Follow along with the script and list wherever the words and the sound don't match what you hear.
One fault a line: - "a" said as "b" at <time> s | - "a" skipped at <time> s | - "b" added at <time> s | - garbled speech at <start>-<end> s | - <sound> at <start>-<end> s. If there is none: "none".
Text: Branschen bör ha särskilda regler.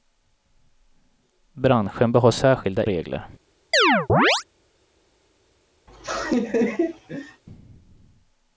- chirp at 3.7-4.4 s
- laugh at 5.9-7.4 s